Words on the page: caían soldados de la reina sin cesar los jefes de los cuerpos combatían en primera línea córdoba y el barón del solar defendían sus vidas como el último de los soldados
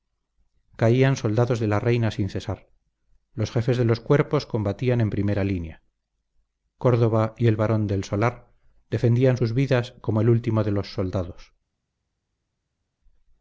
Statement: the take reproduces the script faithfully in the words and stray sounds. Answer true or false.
true